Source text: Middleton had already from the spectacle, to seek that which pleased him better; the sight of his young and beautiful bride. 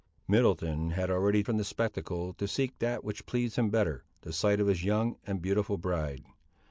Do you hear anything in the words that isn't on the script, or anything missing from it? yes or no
no